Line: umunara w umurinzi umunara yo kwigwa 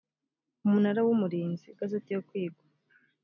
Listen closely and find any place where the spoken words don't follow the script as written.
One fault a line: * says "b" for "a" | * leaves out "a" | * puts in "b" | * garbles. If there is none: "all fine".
* says "igazeti" for "umunara"